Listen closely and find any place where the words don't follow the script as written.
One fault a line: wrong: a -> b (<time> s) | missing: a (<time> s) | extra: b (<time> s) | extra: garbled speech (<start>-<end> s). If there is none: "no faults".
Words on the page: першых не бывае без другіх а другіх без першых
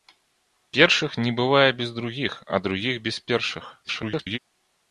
extra: garbled speech (3.8-4.4 s)